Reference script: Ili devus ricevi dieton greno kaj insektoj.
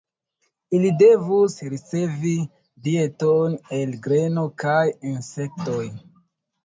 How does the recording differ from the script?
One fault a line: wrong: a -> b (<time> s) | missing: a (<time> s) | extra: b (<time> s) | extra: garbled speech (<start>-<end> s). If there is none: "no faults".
extra: el (3.8 s)